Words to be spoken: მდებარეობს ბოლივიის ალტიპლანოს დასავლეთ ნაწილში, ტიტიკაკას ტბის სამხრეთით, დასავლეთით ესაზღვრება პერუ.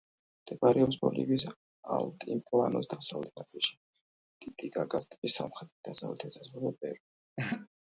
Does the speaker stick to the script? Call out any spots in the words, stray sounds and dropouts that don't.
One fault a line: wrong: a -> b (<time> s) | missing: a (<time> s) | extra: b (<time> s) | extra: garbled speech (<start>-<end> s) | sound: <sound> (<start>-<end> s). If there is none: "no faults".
sound: laugh (7.4-7.7 s)